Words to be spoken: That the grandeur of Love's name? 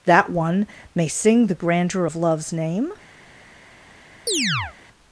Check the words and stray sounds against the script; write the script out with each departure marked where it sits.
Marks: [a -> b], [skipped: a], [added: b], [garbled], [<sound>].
That [added: one may sing] the grandeur of Love's name? [chirp]